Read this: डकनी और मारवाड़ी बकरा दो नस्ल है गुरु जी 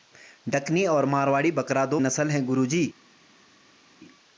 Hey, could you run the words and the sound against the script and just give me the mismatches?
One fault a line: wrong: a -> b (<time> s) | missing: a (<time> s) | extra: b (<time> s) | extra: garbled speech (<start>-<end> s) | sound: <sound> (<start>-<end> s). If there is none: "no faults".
no faults